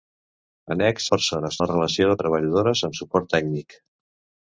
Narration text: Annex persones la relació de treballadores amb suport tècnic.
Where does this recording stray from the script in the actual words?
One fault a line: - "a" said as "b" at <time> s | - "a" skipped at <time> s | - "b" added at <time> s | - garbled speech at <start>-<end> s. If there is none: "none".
none